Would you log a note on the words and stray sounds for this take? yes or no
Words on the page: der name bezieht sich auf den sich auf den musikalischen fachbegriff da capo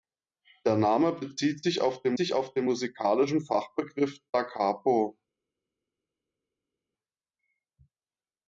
no